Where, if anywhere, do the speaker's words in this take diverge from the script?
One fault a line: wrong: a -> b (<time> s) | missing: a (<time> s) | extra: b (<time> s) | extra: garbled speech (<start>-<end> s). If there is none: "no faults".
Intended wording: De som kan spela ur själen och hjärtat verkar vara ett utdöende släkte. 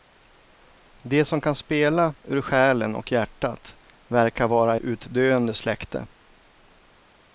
missing: ett (4.8 s)